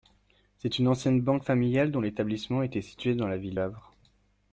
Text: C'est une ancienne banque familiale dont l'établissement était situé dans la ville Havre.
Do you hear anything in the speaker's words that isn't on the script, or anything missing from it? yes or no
no